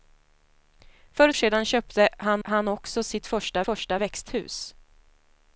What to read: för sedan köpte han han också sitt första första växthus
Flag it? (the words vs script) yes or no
no